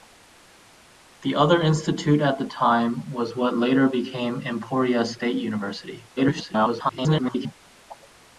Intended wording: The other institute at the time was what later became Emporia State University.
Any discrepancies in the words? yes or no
yes